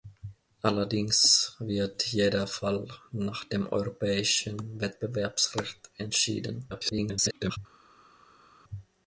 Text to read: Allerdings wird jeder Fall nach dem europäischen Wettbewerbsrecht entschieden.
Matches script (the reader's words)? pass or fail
fail